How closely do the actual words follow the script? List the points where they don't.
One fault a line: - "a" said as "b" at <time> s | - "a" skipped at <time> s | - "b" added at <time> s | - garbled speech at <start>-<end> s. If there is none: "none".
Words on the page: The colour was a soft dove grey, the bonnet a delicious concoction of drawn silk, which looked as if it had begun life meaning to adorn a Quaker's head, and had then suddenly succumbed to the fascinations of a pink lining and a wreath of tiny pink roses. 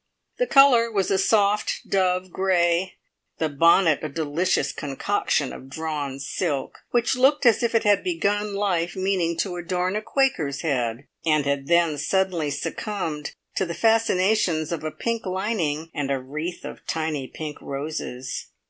none